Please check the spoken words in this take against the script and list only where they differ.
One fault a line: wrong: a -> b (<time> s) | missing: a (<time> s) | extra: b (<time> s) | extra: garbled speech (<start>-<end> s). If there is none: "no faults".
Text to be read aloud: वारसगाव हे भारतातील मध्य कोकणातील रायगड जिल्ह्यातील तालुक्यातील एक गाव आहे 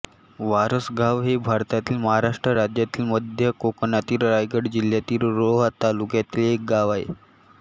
extra: महाराष्ट्र राज्यातील (2.0 s)
extra: रोहा (5.3 s)